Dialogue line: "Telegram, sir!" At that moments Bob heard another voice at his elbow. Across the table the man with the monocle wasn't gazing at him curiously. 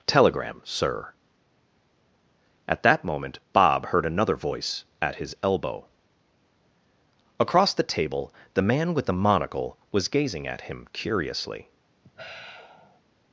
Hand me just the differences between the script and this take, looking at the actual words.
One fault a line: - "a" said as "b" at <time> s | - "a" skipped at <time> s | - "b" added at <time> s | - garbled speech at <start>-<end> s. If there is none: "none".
- "moments" said as "moment" at 3.0 s
- "wasn't" said as "was" at 9.9 s